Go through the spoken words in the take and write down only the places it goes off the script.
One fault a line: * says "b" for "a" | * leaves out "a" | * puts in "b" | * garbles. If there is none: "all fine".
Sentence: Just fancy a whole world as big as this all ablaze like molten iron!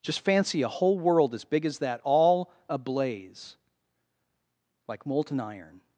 * says "that" for "this"